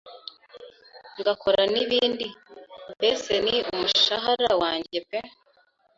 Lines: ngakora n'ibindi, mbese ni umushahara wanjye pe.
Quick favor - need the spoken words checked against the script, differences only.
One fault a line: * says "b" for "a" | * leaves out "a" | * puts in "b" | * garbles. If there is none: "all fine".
all fine